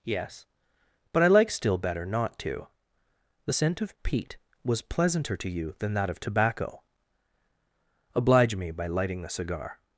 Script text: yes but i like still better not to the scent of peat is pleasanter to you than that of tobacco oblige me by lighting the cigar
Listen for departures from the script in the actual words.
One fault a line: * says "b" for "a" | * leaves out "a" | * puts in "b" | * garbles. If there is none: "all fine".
* says "was" for "is"